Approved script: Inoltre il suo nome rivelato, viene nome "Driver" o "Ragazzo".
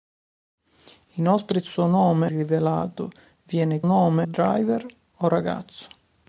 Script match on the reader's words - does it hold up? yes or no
yes